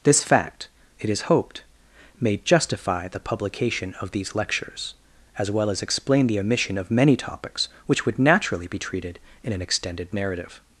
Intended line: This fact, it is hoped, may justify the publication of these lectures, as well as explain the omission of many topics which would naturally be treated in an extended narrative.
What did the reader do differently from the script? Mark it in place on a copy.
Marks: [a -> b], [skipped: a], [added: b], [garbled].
This fact, it is hoped, may justify the publication of these lectures, as well as explain the omission of many topics which would naturally be treated in an extended narrative.